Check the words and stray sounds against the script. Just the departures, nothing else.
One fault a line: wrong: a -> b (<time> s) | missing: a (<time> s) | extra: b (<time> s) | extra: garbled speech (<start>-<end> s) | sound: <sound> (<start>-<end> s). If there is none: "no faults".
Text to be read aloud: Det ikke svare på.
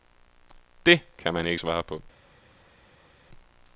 extra: kan man (1.2 s)